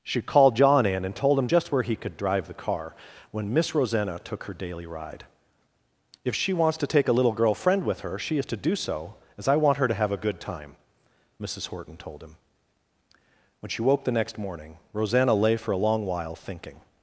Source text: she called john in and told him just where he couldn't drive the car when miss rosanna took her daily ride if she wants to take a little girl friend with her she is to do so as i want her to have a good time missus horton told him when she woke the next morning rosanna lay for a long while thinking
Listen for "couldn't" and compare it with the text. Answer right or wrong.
wrong